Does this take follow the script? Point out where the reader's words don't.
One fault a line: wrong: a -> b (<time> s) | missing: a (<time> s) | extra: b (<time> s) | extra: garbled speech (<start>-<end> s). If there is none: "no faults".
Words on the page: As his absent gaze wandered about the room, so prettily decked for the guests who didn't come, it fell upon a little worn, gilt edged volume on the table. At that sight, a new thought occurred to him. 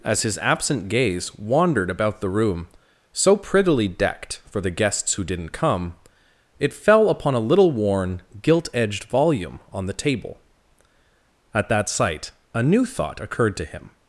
no faults